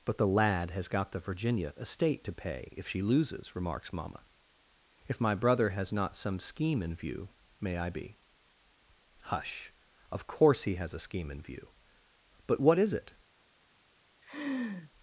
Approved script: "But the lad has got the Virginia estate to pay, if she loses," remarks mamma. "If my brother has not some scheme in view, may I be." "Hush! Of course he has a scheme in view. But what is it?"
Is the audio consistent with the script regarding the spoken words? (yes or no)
yes